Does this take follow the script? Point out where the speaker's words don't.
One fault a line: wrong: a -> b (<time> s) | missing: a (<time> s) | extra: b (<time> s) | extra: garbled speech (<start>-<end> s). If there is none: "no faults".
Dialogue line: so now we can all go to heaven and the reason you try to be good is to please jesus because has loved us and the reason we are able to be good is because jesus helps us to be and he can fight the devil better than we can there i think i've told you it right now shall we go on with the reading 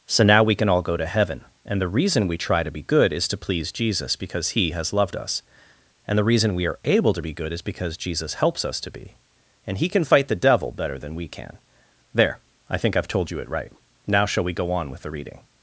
wrong: you -> we (2.3 s)
extra: he (4.5 s)